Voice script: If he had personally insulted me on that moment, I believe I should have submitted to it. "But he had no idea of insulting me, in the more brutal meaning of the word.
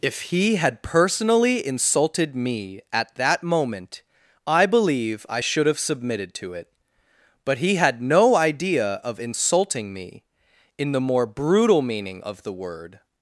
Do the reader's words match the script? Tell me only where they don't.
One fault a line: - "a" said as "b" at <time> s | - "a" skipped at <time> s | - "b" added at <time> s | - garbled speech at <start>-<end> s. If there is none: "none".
- "on" said as "at" at 2.9 s